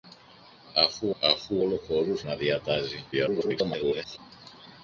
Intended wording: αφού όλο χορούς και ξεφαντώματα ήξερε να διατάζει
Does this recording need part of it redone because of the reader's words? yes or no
yes